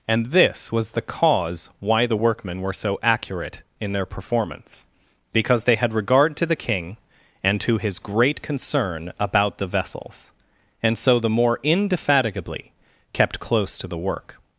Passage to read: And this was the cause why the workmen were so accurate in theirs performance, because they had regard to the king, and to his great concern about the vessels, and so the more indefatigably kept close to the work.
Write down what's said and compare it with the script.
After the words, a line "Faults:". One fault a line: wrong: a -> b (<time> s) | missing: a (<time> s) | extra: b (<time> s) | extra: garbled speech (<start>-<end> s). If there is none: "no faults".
And this was the cause why the workmen were so accurate in their performance, because they had regard to the king, and to his great concern about the vessels, and so the more indefatigably kept close to the work.
Faults:
wrong: theirs -> their (3.9 s)